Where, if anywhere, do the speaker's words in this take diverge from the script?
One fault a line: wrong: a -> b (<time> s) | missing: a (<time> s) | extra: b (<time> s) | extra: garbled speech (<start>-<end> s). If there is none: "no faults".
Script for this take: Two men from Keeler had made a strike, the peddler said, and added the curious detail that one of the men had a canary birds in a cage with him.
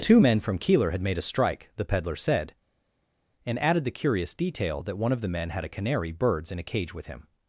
no faults